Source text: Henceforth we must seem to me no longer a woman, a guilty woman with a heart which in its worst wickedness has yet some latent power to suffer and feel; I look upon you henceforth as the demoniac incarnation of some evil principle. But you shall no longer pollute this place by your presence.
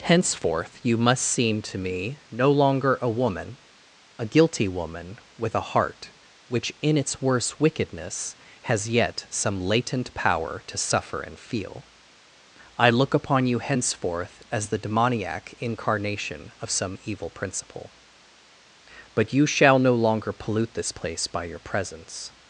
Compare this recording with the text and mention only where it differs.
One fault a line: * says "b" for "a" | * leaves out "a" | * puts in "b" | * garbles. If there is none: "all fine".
* says "you" for "we"